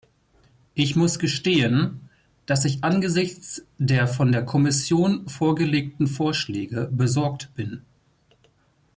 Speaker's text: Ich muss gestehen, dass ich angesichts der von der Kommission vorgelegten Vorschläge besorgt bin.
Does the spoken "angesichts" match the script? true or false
true